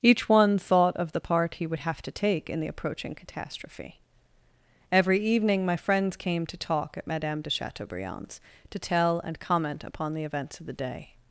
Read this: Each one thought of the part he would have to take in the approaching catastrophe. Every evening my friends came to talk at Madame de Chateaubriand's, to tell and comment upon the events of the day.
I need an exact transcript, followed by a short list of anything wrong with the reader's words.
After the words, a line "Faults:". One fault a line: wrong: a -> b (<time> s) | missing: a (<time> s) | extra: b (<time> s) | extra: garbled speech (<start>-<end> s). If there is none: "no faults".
Each one thought of the part he would have to take in the approaching catastrophe. Every evening my friends came to talk at Madame de Chateaubriand's, to tell and comment upon the events of the day.
Faults:
no faults